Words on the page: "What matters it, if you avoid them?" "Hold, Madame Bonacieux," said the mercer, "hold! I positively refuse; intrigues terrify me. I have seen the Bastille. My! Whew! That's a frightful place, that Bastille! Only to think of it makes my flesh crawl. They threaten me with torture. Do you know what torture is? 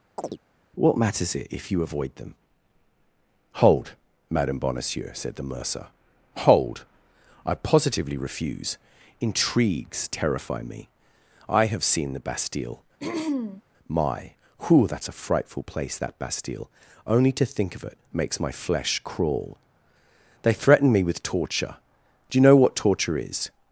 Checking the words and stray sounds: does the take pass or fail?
fail